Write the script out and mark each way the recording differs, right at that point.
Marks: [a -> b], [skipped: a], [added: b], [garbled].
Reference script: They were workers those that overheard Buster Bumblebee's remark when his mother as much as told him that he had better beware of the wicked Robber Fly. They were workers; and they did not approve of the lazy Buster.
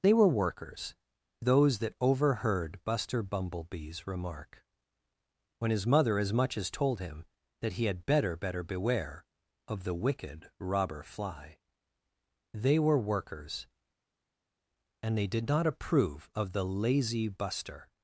They were workers those that overheard Buster Bumblebee's remark when his mother as much as told him that he had better [added: better] beware of the wicked Robber Fly. They were workers; and they did not approve of the lazy Buster.